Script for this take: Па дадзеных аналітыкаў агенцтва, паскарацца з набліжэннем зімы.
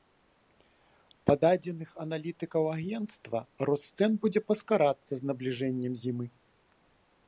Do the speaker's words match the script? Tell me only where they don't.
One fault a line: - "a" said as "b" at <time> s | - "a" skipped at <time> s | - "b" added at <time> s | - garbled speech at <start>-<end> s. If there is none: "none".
- "рост цэн будзе" added at 3.7 s